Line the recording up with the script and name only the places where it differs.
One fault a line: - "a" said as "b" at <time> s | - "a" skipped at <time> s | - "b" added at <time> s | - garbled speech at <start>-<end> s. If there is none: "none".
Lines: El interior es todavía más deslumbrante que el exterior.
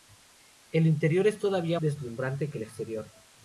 - "más" skipped at 1.8 s